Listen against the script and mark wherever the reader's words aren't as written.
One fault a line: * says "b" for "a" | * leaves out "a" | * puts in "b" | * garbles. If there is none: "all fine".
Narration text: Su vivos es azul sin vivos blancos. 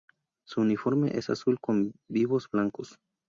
* says "uniforme" for "vivos"
* says "con" for "sin"